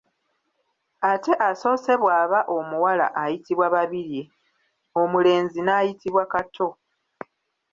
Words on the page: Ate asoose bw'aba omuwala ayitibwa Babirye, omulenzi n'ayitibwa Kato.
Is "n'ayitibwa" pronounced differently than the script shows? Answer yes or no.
no